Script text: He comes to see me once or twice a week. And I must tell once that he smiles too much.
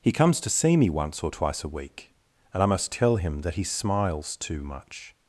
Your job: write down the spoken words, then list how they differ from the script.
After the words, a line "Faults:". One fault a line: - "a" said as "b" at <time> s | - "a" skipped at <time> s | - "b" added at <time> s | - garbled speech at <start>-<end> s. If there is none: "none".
He comes to see me once or twice a week. And I must tell him that he smiles too much.
Faults:
- "once" said as "him" at 3.2 s